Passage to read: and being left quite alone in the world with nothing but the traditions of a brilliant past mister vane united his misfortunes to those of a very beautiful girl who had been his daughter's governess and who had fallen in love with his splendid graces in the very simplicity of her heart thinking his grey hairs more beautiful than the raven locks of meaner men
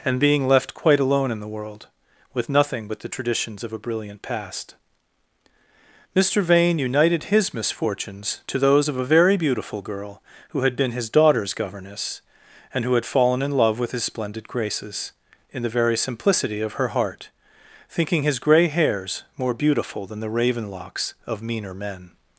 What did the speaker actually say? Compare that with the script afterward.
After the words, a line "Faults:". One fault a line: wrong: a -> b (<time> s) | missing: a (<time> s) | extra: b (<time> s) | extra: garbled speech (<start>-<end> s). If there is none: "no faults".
and being left quite alone in the world with nothing but the traditions of a brilliant past mister vane united his misfortunes to those of a very beautiful girl who had been his daughter's governess and who had fallen in love with his splendid graces in the very simplicity of her heart thinking his grey hairs more beautiful than the raven locks of meaner men
Faults:
no faults